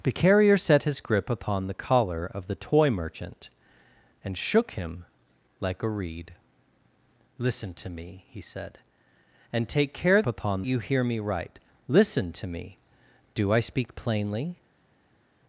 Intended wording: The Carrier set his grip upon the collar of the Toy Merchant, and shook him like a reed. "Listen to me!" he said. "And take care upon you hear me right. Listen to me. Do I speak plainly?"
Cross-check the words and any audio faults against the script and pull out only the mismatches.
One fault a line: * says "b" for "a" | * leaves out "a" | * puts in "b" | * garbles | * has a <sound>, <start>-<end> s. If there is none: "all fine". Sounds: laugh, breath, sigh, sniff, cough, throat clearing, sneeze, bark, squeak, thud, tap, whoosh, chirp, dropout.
all fine